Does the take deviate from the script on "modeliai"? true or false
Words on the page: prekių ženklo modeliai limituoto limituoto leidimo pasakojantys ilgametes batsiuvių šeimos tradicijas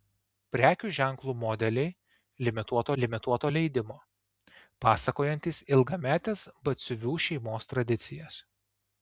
false